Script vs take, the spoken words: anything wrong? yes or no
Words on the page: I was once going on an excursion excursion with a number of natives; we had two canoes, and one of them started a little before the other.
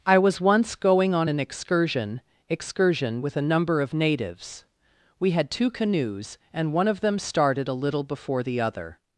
no